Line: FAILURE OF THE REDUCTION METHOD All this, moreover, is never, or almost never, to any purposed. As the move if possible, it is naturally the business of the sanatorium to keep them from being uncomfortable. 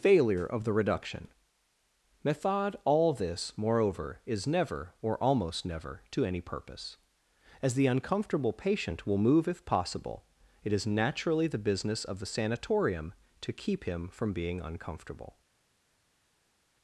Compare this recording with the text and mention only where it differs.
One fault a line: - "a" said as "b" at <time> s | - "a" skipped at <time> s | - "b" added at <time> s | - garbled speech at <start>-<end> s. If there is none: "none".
- "purposed" said as "purpose" at 6.4 s
- "uncomfortable patient will" added at 7.8 s
- "them" said as "him" at 13.8 s